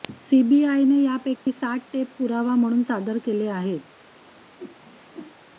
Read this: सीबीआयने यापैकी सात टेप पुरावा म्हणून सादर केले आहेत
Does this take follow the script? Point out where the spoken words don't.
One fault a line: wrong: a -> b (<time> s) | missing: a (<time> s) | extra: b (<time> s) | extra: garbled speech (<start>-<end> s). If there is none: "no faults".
no faults